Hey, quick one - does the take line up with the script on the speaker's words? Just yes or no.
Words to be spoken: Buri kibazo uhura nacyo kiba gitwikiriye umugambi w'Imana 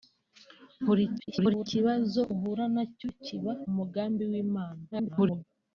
no